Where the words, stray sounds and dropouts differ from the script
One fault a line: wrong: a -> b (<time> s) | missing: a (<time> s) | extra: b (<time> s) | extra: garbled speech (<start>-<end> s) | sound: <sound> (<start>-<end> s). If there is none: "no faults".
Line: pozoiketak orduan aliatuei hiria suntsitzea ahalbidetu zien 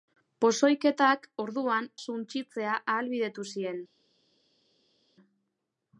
missing: aliatuei hiria (1.9 s)